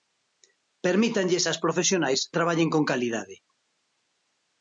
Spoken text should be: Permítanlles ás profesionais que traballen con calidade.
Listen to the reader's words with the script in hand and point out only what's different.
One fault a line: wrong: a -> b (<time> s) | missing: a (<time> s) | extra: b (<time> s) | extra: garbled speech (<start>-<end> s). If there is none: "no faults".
missing: que (2.2 s)